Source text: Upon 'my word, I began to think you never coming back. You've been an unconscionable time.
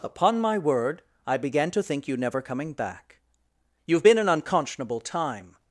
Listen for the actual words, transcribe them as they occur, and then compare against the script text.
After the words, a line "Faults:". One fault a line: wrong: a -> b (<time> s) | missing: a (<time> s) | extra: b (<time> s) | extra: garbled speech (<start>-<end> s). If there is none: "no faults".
Upon 'my word, I began to think you never coming back. You've been an unconscionable time.
Faults:
no faults